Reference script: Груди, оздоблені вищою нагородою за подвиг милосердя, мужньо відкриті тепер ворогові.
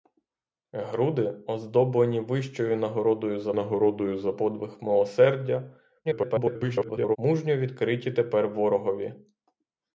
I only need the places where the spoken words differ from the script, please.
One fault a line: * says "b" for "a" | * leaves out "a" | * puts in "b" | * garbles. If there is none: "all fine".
* puts in "нагородою за"
* garbles